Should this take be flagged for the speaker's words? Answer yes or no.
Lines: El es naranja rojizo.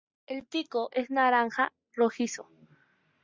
yes